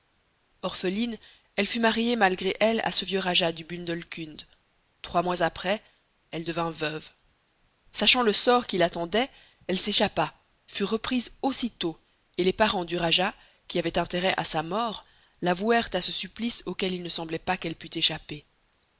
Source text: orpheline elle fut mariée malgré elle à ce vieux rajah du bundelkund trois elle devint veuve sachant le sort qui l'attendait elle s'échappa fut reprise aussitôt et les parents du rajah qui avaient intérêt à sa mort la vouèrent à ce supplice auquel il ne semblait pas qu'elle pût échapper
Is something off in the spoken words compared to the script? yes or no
yes